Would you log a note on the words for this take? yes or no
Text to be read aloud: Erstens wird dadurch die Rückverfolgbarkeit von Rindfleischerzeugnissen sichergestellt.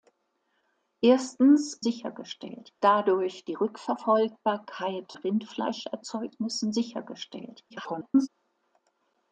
yes